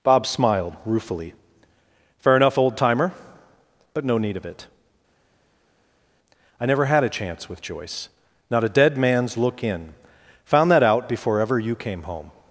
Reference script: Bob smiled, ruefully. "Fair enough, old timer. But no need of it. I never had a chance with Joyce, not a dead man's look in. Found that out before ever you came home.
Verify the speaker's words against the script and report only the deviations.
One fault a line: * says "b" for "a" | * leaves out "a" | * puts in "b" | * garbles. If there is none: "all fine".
all fine